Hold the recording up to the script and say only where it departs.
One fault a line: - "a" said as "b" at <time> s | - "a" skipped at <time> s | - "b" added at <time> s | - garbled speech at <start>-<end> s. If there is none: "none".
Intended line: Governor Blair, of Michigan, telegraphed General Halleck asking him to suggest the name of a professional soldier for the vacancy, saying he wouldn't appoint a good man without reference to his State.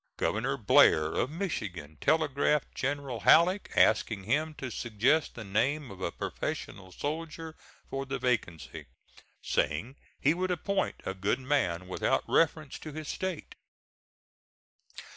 - "wouldn't" said as "would" at 10.3 s